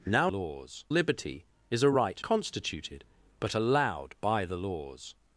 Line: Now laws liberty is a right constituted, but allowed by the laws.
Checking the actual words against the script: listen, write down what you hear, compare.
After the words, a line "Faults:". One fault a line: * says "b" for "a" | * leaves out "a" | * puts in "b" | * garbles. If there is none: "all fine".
Now laws liberty is a right constituted, but allowed by the laws.
Faults:
all fine